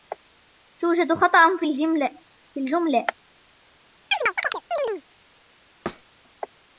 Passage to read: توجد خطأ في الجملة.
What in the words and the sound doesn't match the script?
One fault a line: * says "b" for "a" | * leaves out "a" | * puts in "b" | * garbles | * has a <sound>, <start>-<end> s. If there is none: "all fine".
* has a chirp, 4.1-5.0 s
* has a thud, 5.9-6.1 s